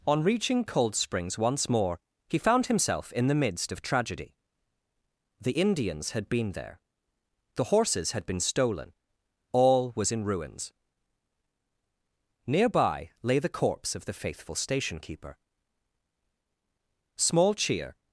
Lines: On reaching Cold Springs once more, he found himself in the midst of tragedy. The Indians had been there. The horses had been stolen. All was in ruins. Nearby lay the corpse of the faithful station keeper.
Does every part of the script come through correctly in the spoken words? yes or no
no